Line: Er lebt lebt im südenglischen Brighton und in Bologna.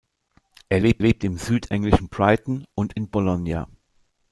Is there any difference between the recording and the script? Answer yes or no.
no